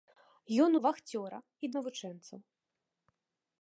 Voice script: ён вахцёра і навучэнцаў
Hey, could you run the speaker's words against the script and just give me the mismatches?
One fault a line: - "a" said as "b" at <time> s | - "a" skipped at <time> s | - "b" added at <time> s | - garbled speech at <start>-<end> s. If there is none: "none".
none